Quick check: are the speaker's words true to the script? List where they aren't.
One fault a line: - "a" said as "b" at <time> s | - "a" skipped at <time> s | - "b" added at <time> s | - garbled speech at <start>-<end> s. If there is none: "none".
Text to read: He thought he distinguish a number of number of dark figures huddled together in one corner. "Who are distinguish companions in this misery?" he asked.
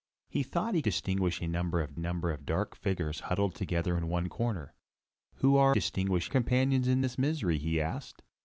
none